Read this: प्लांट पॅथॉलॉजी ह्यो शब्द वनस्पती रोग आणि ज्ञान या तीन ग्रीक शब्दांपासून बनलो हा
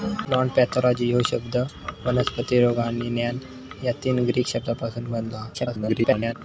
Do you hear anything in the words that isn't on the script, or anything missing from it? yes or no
yes